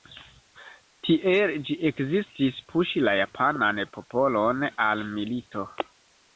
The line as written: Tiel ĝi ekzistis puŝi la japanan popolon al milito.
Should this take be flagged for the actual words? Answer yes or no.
no